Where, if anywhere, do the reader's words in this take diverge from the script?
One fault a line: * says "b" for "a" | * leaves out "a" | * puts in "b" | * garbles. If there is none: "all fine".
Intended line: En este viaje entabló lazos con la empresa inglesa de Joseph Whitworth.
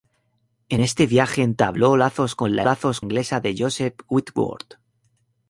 * says "lazos" for "empresa"